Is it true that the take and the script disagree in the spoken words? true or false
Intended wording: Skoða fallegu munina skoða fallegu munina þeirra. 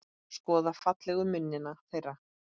true